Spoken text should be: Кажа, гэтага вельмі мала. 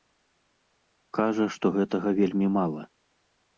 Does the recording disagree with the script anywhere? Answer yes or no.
yes